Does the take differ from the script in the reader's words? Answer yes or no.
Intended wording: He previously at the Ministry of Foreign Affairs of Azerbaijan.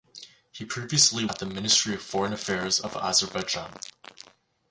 no